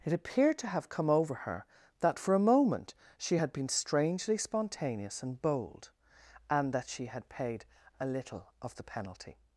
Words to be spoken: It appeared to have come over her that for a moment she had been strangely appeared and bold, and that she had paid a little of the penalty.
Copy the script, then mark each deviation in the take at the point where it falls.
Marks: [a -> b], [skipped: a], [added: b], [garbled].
It appeared to have come over her that for a moment she had been strangely [appeared -> spontaneous] and bold, and that she had paid a little of the penalty.